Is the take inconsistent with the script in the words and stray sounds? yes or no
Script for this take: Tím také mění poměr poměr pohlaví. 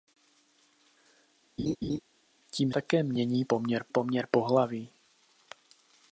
yes